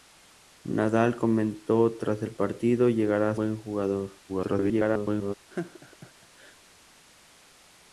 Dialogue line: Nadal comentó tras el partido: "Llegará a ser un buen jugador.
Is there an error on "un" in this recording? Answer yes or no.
yes